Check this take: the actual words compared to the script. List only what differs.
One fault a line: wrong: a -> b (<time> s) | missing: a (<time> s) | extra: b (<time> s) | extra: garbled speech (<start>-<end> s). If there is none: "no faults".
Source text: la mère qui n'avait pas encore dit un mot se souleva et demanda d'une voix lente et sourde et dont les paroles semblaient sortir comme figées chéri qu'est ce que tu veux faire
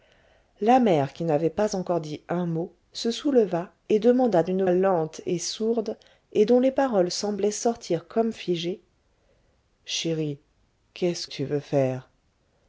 missing: voix (4.6 s)
missing: que (11.3 s)